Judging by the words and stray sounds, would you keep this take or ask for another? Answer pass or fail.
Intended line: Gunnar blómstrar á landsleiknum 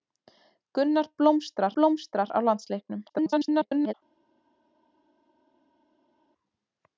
fail